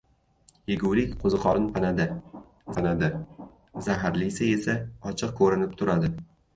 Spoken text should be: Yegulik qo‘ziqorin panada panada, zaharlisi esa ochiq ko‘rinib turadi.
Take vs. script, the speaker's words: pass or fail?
pass